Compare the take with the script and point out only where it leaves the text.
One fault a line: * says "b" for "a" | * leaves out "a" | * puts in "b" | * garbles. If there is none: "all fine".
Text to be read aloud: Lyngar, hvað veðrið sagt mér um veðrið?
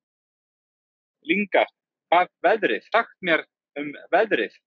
all fine